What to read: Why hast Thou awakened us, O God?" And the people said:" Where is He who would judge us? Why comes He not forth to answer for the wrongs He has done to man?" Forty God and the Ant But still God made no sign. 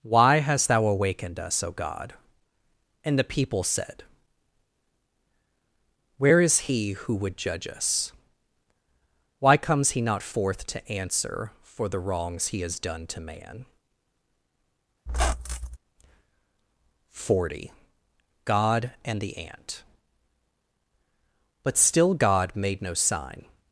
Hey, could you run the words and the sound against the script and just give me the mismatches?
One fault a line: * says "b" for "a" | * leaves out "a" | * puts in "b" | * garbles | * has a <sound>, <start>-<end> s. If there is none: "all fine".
* has a squeak, 15.1-15.8 s